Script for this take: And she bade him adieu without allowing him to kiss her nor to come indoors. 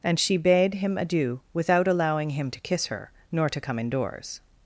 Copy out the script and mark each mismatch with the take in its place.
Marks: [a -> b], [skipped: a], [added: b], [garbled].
And she bade him adieu without allowing him to kiss her nor to come indoors.